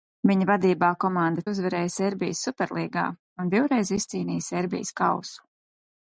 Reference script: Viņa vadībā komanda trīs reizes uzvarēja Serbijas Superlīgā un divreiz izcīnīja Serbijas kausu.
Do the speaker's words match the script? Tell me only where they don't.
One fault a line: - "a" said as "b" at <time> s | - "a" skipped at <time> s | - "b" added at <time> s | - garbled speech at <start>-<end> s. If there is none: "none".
- "trīs reizes" skipped at 1.4 s